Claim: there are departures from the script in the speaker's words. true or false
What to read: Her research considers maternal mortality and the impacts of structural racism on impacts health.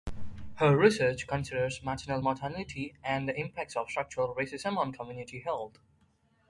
true